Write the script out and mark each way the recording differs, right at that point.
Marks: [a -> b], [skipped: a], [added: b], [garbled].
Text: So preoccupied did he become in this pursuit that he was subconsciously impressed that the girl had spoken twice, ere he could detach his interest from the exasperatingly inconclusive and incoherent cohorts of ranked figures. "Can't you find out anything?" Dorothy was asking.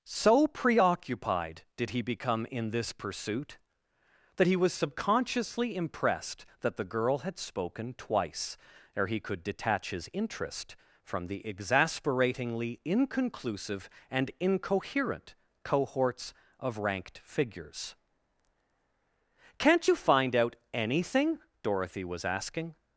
So preoccupied did he become in this pursuit that he was subconsciously impressed that the girl had spoken twice, ere he could detach his interest from the exasperatingly inconclusive and incoherent cohorts of ranked figures. "Can't you find out anything?" Dorothy was asking.